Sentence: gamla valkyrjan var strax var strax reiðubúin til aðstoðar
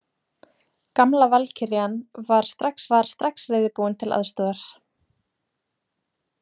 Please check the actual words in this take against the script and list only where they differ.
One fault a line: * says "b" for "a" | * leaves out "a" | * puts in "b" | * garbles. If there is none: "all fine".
all fine